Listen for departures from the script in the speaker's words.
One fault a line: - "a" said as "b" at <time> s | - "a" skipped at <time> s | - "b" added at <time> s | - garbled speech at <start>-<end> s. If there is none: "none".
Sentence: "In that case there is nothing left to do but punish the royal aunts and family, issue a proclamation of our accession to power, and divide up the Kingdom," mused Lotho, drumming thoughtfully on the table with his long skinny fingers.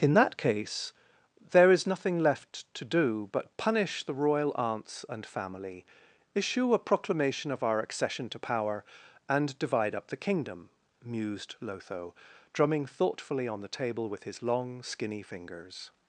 none